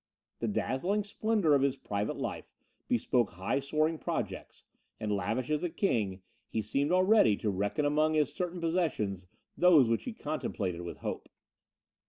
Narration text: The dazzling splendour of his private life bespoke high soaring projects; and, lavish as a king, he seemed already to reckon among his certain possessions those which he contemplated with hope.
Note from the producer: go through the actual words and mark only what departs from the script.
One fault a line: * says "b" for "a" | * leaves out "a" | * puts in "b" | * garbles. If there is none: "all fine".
all fine